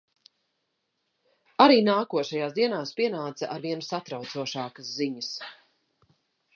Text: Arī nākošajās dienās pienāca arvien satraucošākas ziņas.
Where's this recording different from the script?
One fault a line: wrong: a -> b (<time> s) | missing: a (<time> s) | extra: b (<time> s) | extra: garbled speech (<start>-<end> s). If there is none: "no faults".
no faults